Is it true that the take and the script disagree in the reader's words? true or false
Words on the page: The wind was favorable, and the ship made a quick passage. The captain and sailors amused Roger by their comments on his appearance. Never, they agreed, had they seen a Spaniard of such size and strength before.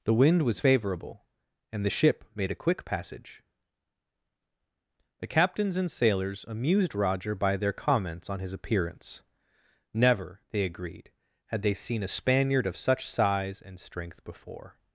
true